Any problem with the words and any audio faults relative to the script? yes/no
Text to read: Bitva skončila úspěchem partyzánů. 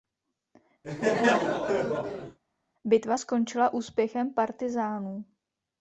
yes